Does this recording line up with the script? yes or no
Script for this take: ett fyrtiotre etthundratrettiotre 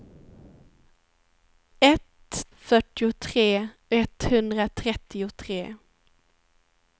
yes